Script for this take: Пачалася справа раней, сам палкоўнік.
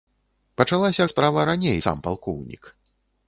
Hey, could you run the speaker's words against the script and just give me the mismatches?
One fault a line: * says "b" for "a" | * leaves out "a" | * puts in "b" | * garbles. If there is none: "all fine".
all fine